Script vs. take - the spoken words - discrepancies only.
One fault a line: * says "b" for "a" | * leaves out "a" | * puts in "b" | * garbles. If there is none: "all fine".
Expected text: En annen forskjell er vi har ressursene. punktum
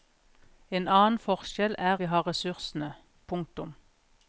all fine